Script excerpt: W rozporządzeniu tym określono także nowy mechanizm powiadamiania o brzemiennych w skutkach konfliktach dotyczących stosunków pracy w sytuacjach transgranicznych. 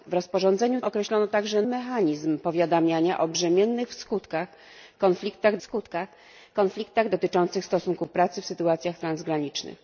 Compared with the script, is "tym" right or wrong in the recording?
wrong